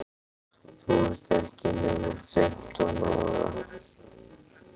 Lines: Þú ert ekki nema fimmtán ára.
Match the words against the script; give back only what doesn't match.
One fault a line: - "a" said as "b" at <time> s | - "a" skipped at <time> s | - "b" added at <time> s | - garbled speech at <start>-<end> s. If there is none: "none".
none